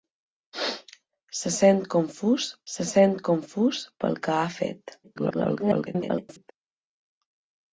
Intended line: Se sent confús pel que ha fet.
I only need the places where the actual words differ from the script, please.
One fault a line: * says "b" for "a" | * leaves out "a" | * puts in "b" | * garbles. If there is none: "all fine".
* puts in "se sent confús"
* garbles